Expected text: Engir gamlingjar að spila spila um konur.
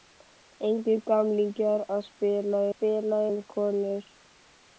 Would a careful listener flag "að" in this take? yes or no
no